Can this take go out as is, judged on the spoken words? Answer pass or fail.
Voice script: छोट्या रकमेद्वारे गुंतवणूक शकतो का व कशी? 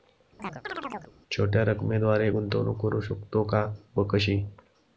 fail